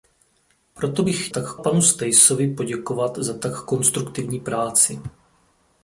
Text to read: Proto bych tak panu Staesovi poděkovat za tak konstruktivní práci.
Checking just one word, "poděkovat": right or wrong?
right